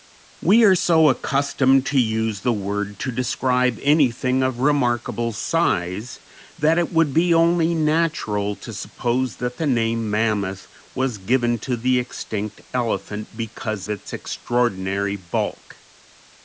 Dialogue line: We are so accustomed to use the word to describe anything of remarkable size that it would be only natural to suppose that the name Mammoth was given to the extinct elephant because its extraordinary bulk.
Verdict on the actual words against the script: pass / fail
pass